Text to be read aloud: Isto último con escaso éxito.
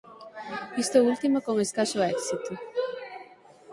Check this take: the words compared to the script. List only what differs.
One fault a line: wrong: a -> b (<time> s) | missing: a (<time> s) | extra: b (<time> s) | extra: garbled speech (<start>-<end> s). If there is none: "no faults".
no faults